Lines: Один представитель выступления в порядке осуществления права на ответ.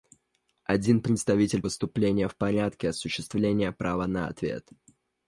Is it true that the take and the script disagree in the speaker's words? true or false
false